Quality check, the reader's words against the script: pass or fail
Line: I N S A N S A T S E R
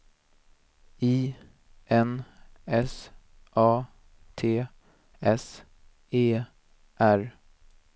fail